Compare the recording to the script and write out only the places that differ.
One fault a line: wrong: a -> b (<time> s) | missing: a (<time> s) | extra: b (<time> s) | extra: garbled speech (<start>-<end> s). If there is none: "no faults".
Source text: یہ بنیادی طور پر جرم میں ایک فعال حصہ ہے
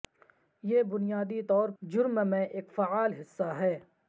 missing: پر (1.7 s)